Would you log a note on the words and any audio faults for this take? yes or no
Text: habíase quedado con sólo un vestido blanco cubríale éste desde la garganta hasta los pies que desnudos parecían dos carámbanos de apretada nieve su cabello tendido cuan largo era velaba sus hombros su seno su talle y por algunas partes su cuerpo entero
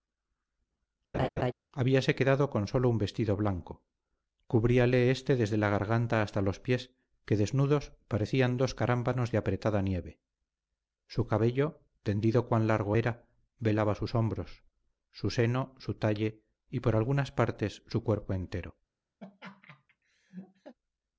yes